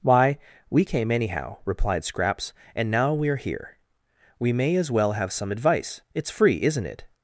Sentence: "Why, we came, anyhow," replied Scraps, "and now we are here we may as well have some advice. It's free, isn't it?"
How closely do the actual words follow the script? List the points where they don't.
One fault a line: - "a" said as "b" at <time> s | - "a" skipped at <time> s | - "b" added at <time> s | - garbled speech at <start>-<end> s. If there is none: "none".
none